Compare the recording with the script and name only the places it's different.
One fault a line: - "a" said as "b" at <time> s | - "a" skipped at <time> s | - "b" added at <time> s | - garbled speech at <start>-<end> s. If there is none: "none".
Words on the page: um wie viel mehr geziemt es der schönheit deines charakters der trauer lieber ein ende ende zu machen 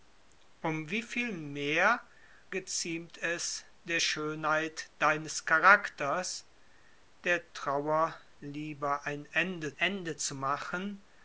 none